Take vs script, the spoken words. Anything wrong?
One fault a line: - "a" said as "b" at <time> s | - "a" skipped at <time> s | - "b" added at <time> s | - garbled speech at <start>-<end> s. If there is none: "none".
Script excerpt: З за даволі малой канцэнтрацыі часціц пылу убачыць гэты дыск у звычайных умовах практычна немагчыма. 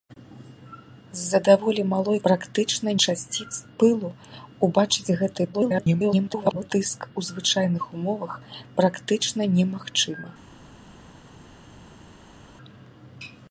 - "канцэнтрацыі" said as "практычна" at 2.3 s
- garbled speech at 5.5-6.7 s